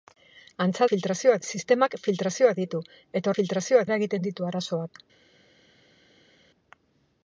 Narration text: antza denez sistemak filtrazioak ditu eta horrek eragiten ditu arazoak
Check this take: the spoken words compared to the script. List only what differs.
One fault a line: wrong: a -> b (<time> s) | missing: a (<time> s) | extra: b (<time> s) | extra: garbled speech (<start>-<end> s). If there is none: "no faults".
wrong: denez -> filtrazioak (0.9 s)
wrong: horrek -> filtrazioak (3.4 s)